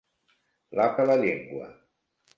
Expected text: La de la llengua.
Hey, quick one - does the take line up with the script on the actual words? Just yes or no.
yes